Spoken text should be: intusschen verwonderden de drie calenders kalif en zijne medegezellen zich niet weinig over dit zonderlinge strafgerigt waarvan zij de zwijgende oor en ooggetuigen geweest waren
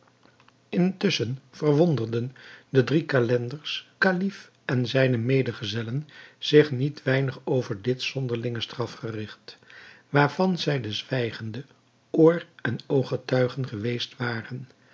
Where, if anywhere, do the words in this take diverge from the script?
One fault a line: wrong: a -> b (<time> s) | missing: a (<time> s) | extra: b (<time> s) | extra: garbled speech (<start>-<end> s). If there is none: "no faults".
no faults